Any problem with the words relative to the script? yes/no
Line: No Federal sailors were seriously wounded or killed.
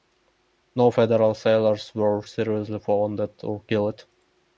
no